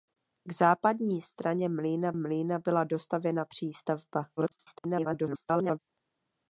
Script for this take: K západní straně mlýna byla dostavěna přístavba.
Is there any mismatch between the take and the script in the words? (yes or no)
yes